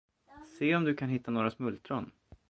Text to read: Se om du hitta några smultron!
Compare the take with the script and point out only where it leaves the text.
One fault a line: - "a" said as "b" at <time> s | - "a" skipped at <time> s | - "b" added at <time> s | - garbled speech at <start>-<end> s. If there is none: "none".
- "kan" added at 0.9 s